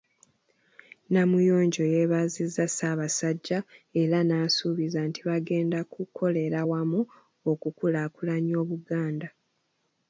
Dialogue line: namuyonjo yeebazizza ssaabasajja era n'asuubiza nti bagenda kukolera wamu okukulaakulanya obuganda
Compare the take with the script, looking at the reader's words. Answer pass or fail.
pass